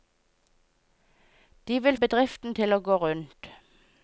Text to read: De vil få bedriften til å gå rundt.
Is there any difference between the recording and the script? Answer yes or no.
yes